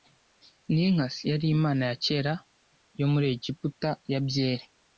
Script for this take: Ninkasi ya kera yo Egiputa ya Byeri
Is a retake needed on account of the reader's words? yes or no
yes